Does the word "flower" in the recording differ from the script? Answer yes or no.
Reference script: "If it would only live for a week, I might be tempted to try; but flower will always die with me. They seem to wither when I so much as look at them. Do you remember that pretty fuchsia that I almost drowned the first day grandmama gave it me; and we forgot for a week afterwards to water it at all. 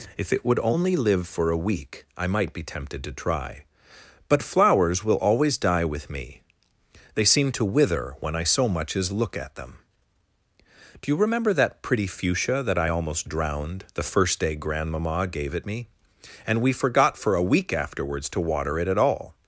yes